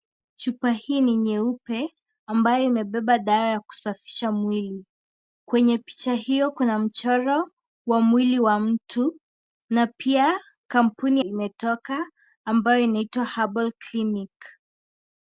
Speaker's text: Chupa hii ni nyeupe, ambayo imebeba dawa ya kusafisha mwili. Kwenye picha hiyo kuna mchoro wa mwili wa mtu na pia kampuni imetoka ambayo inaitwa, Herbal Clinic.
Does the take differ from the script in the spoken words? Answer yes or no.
no